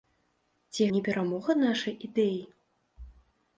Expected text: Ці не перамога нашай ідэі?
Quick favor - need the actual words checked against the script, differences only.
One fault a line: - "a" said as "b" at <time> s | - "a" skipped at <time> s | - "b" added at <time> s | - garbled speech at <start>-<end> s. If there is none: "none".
none